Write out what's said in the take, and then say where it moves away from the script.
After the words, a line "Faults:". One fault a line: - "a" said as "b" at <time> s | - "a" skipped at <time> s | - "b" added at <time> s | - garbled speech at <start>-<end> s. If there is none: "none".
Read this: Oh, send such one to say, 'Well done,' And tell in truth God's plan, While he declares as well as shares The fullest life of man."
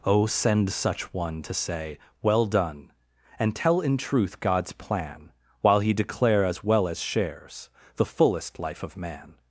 Oh, send such one to say, 'Well done,' And tell in truth God's plan, While he declare as well as shares The fullest life of man."
Faults:
- "declares" said as "declare" at 5.9 s